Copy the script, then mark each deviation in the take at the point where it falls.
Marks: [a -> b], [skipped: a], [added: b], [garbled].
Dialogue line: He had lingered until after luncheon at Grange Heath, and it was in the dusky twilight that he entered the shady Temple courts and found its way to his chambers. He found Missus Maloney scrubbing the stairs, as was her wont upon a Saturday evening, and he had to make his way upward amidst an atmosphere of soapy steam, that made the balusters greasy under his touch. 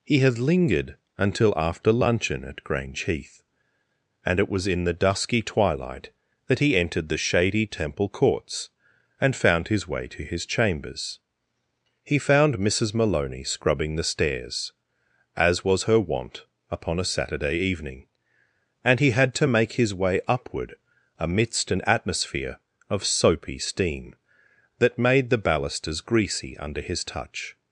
He had lingered until after luncheon at Grange Heath, and it was in the dusky twilight that he entered the shady Temple courts and found [its -> his] way to his chambers. He found Missus Maloney scrubbing the stairs, as was her wont upon a Saturday evening, and he had to make his way upward amidst an atmosphere of soapy steam, that made the balusters greasy under his touch.